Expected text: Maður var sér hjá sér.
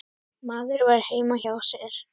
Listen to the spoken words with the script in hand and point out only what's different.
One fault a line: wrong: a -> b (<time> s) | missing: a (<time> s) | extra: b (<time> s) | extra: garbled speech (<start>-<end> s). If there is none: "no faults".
wrong: sér -> heima (1.1 s)